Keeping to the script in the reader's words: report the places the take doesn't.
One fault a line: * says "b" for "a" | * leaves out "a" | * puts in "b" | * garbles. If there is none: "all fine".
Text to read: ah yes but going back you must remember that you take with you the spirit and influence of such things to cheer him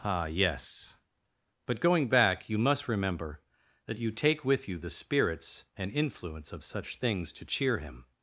* says "spirits" for "spirit"